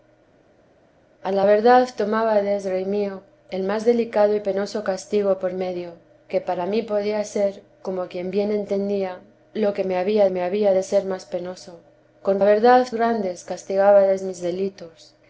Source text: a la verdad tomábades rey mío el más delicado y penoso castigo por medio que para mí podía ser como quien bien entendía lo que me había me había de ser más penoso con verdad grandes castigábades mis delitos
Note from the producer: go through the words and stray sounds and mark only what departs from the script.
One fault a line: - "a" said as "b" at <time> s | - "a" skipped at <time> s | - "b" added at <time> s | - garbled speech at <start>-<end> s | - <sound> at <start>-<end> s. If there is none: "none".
none